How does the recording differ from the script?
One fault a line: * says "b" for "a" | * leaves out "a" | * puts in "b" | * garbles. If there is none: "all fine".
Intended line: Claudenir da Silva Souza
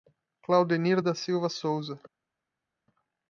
all fine